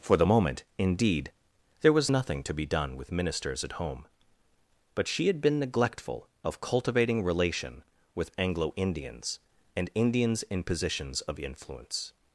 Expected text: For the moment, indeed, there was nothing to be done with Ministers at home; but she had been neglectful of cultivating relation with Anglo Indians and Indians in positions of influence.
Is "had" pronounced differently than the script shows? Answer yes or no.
no